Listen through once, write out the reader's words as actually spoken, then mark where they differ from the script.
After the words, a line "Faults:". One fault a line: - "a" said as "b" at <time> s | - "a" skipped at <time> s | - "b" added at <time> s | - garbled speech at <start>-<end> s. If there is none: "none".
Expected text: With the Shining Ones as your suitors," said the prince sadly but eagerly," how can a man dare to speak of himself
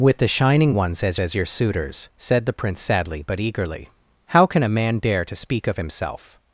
With the Shining Ones as as your suitors," said the prince sadly but eagerly," how can a man dare to speak of himself
Faults:
- "as" added at 1.2 s